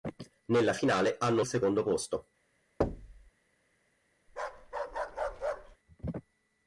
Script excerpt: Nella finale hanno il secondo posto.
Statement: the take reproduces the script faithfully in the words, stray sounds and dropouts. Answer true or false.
false